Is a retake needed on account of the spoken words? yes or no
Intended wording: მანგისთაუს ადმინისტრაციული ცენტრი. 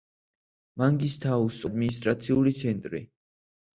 no